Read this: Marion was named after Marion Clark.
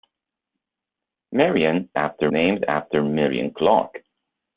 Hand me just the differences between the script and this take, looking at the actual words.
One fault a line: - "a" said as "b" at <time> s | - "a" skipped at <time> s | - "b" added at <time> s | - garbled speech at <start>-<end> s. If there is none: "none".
- "was" said as "after" at 2.0 s